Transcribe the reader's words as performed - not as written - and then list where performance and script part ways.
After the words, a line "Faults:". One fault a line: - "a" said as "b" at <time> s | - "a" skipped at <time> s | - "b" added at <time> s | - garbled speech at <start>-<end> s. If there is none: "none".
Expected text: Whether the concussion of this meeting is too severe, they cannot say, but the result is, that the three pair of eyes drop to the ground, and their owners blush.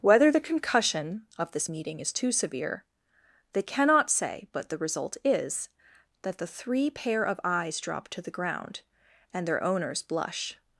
Whether the concussion of this meeting is too severe, they cannot say, but the result is, that the three pair of eyes drop to the ground, and their owners blush.
Faults:
none